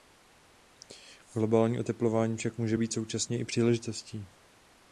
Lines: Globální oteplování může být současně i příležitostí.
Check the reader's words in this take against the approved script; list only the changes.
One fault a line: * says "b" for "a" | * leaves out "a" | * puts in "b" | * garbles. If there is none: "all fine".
* puts in "však"